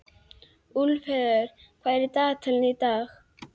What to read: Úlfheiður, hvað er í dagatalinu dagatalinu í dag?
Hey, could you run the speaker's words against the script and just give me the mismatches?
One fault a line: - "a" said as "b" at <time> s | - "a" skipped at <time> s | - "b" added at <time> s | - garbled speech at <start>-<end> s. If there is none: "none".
- "dagatalinu" skipped at 2.8 s